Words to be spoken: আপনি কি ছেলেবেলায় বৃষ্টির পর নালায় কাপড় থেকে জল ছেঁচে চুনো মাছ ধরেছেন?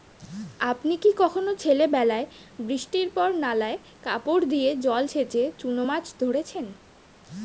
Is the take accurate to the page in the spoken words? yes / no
no